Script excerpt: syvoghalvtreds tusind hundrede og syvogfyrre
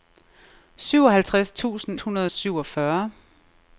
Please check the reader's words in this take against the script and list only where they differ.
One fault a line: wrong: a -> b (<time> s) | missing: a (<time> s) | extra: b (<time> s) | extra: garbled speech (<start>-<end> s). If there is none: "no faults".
no faults